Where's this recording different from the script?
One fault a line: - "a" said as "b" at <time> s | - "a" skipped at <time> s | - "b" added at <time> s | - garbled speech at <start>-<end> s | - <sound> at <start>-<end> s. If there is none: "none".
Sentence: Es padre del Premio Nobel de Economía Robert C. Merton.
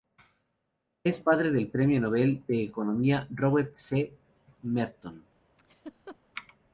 - laugh at 5.6-6.2 s